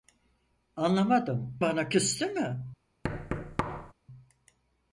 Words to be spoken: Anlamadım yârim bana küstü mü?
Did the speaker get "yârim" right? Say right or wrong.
wrong